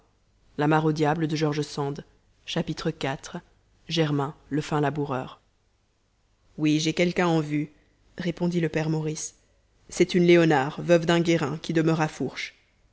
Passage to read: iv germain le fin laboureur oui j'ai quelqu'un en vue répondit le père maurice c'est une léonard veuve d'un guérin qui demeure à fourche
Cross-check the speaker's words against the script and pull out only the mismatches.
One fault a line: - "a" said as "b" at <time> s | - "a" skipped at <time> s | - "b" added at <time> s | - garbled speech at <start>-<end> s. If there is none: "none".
none